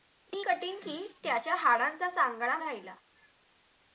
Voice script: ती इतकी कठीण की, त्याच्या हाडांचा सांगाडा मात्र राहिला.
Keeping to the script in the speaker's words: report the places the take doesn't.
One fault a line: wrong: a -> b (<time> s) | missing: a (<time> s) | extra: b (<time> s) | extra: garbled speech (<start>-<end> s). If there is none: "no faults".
missing: इतकी (0.4 s)
missing: मात्र (2.6 s)